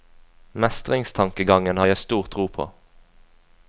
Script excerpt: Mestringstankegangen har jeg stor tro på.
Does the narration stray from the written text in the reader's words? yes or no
no